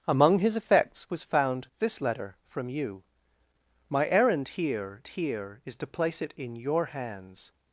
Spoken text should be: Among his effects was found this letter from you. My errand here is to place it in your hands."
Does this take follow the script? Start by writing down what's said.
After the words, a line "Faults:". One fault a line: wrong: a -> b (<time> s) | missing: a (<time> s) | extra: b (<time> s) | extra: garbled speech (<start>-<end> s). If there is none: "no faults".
Among his effects was found this letter from you. My errand here here is to place it in your hands."
Faults:
extra: here (5.1 s)